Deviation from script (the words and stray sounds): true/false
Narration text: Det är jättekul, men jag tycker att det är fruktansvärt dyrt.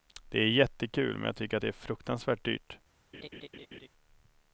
true